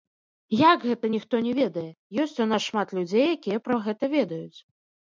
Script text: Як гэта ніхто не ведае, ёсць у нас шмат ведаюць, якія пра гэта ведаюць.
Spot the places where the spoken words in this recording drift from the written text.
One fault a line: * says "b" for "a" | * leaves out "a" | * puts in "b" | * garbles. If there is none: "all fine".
* says "людзей" for "ведаюць"